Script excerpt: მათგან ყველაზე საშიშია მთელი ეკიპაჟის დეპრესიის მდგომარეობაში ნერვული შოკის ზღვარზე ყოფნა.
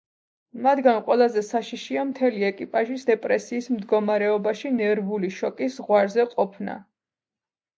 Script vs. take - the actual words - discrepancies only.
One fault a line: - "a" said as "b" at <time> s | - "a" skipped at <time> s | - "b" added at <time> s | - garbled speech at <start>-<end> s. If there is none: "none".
none